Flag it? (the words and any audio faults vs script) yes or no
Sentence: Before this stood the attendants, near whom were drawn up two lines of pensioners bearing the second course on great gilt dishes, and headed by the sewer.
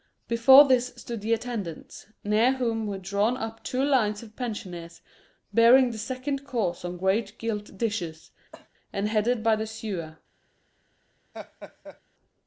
yes